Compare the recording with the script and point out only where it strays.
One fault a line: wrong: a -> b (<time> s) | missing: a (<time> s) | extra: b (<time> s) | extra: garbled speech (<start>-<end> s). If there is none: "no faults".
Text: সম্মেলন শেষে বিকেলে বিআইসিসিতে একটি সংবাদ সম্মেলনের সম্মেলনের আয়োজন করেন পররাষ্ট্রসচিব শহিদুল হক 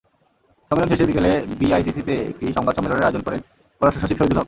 missing: সম্মেলনের (3.1 s)